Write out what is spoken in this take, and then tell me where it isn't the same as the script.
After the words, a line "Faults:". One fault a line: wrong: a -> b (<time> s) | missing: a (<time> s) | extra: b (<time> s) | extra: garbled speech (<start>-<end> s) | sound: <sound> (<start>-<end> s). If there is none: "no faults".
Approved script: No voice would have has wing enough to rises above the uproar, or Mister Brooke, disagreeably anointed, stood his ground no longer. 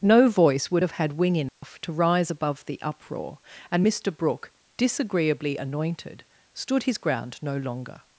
No voice would have had wing enough to rise above the uproar, and Mister Brooke, disagreeably anointed, stood his ground no longer.
Faults:
wrong: has -> had (0.9 s)
sound: dropout (1.5-1.6 s)
wrong: rises -> rise (1.9 s)
wrong: or -> and (3.7 s)